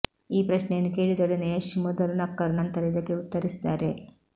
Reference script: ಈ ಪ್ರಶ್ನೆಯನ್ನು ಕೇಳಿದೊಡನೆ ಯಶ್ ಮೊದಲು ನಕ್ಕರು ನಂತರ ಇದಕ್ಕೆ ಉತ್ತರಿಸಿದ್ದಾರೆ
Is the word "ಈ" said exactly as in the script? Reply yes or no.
yes